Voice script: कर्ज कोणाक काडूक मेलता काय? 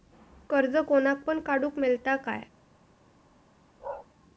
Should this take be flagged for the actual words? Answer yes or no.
yes